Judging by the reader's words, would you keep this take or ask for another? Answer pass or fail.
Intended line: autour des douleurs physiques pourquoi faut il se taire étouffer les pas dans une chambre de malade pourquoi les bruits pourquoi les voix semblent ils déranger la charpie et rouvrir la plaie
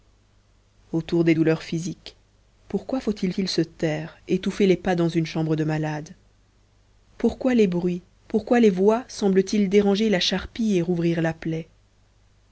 fail